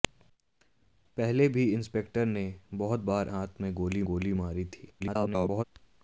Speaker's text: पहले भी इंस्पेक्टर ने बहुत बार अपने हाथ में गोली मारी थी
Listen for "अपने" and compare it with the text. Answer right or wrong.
wrong